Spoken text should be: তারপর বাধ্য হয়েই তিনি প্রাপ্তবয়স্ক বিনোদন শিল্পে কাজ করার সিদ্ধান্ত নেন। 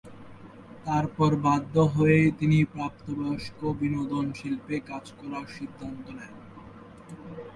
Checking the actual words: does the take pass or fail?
pass